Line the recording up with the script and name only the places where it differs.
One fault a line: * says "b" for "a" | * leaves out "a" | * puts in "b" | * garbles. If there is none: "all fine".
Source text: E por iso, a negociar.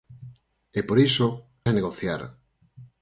all fine